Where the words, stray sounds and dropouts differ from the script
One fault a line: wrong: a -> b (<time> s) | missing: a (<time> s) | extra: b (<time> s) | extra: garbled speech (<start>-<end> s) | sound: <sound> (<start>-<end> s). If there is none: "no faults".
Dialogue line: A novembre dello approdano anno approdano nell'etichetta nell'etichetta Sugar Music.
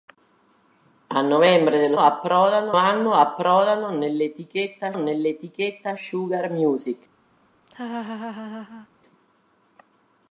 sound: laugh (7.7-8.9 s)